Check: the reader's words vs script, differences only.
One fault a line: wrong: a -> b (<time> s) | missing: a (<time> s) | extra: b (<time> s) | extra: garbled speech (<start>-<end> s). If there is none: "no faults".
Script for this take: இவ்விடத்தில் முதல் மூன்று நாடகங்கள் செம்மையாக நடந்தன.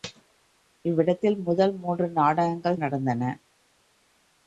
missing: செம்மையாக (2.8 s)